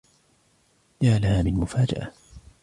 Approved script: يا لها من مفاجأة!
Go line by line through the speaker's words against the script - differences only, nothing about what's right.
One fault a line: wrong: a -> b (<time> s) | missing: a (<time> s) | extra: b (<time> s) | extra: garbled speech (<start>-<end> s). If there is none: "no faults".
no faults